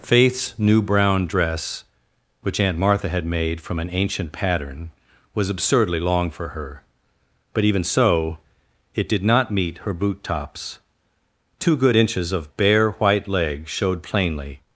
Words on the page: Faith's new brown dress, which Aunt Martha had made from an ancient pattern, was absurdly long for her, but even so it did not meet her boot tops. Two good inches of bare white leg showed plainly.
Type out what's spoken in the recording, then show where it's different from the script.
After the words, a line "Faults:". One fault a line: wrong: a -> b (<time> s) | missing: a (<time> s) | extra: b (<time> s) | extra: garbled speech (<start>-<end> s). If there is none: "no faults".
Faith's new brown dress, which Aunt Martha had made from an ancient pattern, was absurdly long for her, but even so it did not meet her boot tops. Two good inches of bare white leg showed plainly.
Faults:
no faults